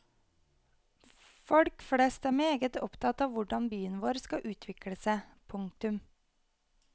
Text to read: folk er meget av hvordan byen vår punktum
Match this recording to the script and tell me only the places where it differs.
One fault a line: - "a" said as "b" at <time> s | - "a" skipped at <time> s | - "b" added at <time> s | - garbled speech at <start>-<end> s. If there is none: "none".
- "flest" added at 1.9 s
- "opptatt" added at 2.9 s
- "skal utvikle seg" added at 4.3 s